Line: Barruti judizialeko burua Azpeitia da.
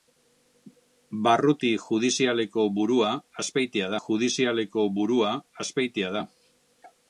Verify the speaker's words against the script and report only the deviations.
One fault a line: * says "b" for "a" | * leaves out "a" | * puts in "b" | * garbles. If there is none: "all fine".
* puts in "judizialeko burua Azpeitia"